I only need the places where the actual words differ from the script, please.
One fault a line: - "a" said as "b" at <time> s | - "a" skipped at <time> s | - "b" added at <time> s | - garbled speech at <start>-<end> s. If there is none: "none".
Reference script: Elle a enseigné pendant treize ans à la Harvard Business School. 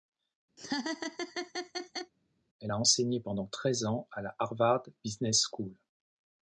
none